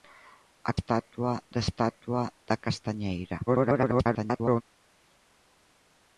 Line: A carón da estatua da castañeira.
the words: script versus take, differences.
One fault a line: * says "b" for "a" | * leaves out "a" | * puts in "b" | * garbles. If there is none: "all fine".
* says "estatua" for "carón"
* garbles